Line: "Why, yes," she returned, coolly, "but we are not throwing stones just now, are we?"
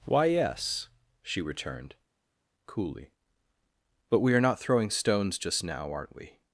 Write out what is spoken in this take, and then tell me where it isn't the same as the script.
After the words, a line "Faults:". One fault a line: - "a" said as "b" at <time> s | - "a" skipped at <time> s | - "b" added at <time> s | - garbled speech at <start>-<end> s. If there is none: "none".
"Why, yes," she returned, coolly, "but we are not throwing stones just now, aren't we?"
Faults:
- "are" said as "aren't" at 5.9 s